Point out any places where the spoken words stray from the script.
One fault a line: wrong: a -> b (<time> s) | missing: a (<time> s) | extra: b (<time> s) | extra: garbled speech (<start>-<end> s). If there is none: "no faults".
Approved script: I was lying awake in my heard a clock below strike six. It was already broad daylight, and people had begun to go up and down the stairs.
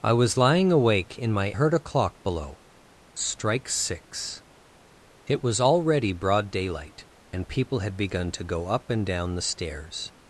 no faults